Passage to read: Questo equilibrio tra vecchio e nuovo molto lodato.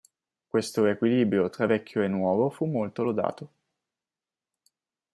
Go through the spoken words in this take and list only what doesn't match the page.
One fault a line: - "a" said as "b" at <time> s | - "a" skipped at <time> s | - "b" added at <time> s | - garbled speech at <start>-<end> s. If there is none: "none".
- "fu" added at 2.5 s